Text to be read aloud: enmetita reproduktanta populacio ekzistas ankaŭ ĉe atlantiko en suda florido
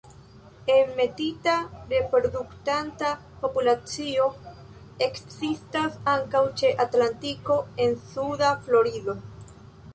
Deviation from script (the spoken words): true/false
false